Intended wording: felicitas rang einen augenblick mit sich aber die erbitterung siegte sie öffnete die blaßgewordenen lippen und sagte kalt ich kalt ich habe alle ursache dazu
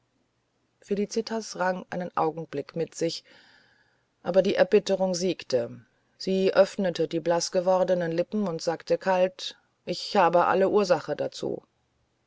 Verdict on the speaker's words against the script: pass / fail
fail